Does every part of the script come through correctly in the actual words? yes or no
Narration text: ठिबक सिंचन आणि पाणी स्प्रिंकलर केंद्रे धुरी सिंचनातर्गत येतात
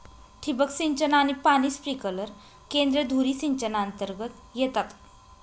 yes